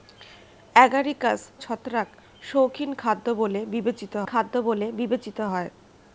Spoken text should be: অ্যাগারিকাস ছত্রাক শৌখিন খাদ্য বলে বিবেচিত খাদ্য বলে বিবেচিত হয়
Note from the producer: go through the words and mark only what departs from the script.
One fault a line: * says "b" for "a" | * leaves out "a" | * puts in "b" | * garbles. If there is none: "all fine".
all fine